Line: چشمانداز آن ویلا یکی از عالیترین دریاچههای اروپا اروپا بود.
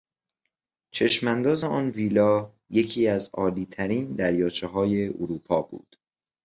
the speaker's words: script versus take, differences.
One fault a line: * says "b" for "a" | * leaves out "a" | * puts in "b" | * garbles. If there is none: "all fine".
* leaves out "اروپا"